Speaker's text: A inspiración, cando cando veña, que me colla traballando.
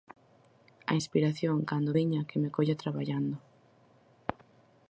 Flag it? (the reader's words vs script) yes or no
yes